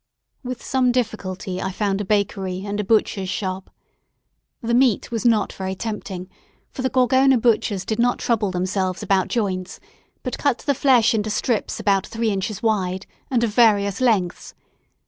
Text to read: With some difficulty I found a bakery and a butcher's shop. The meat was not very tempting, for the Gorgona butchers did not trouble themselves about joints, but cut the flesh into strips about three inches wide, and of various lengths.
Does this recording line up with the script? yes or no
yes